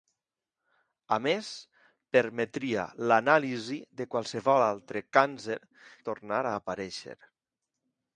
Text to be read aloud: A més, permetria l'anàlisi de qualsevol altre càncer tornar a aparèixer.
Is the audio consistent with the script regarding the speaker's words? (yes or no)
yes